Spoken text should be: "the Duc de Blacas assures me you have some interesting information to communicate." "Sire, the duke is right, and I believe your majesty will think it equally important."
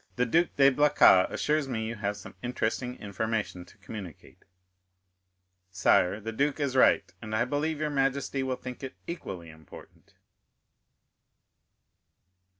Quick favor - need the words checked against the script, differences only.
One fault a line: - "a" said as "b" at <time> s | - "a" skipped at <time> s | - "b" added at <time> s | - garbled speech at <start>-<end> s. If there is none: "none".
none